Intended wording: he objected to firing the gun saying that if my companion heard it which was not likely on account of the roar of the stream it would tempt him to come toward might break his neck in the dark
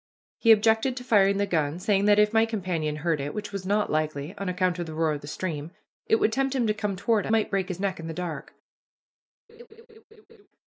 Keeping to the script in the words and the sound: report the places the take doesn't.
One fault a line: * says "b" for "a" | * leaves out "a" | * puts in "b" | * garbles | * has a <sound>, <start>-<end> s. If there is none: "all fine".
* has a laugh, 9.5-10.5 s